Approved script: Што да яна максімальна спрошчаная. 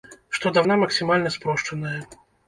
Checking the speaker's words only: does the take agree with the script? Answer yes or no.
yes